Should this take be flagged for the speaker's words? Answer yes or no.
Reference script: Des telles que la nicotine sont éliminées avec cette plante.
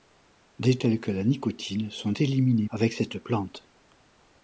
no